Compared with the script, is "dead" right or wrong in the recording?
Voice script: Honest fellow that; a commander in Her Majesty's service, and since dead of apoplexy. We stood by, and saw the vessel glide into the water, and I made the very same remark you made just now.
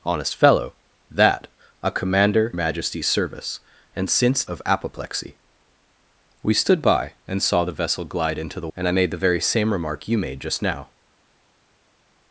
wrong